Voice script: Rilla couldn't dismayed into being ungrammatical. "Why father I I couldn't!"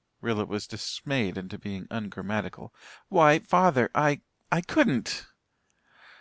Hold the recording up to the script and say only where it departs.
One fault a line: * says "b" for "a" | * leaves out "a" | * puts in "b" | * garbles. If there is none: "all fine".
* says "was" for "couldn't"